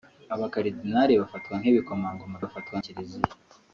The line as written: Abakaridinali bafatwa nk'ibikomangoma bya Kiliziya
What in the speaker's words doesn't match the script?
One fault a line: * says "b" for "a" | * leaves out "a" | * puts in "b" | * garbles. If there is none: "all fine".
* says "bafatwa" for "bya"